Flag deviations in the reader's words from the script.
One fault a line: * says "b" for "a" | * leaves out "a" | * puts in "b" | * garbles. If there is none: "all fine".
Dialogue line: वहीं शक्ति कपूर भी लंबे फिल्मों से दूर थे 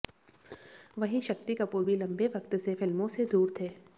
* puts in "वक्त से"